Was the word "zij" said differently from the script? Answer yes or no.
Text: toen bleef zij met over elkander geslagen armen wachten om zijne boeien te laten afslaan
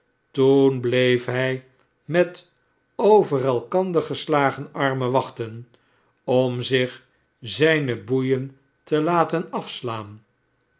yes